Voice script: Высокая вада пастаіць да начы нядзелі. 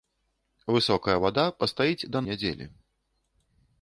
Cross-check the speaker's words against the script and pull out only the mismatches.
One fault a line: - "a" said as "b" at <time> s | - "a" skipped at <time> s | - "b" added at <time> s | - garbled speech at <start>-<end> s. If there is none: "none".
- "начы" skipped at 2.2 s